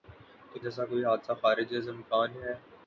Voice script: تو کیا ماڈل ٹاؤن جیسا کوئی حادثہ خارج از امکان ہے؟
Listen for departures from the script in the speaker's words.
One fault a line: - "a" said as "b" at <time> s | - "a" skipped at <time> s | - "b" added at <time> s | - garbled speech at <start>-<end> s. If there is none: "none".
- "کیا ماڈل ٹاؤن" skipped at 0.6 s